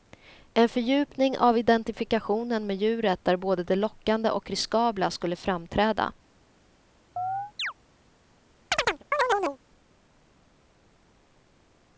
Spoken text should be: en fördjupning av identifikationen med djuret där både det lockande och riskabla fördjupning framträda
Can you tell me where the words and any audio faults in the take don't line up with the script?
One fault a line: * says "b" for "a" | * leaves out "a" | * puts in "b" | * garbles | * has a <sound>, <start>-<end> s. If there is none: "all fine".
* says "skulle" for "fördjupning"
* has a chirp, 7.2-7.7 s
* has a chirp, 8.7-9.6 s